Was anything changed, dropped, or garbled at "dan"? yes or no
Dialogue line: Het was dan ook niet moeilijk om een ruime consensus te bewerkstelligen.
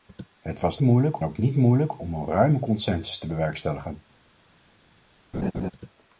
yes